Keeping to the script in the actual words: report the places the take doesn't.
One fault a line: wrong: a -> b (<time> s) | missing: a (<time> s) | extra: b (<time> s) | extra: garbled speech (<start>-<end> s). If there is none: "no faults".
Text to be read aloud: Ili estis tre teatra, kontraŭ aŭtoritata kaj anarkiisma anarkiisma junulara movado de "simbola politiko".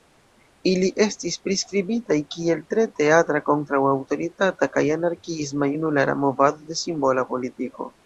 extra: priskribitaj kiel (1.5 s)
missing: anarkiisma (5.7 s)